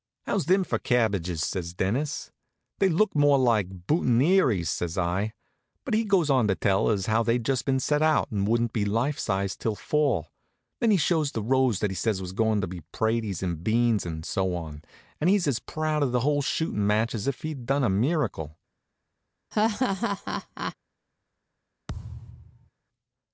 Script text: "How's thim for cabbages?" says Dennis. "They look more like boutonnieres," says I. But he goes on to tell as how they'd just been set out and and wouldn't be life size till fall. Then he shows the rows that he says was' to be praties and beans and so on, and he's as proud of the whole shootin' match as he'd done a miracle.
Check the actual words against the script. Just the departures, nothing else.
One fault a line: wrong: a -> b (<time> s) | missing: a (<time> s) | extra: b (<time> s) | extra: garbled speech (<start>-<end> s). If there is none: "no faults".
missing: and (8.5 s)
extra: goin (12.3 s)
extra: if (17.3 s)